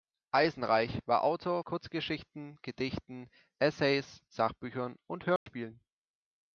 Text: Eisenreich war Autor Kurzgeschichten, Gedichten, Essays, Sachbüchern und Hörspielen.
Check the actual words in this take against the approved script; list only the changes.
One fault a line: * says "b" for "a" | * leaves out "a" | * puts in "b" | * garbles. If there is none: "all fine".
all fine